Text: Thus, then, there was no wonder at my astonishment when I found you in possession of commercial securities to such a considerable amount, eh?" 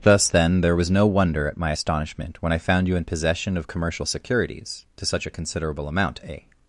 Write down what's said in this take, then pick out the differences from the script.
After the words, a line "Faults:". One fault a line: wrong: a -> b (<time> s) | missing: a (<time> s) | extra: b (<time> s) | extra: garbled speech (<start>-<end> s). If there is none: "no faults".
Thus, then, there was no wonder at my astonishment when I found you in possession of commercial securities to such a considerable amount, eh?"
Faults:
no faults